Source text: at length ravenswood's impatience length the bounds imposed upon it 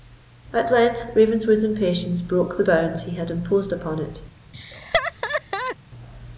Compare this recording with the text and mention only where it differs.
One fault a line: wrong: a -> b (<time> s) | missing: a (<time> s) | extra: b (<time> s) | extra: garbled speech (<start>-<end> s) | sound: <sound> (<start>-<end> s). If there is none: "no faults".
wrong: length -> broke (2.2 s)
extra: he had (3.0 s)
sound: laugh (4.5-5.8 s)